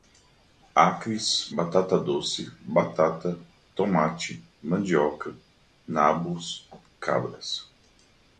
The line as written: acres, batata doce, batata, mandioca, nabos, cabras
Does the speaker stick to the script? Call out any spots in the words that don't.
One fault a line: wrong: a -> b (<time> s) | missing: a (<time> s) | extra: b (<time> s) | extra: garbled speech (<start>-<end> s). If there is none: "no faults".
extra: tomate (3.7 s)